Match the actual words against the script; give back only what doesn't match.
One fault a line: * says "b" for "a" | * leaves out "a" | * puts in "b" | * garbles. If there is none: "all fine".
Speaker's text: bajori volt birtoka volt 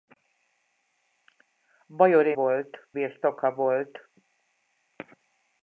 all fine